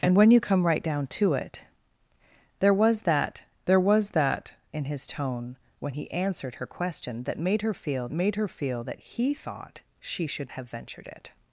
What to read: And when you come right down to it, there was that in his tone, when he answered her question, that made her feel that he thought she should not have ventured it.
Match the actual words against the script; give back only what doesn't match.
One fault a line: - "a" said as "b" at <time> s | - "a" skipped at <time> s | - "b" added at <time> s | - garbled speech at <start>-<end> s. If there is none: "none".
- "there was that" added at 3.6 s
- "made her feel" added at 8.1 s
- "not" skipped at 10.5 s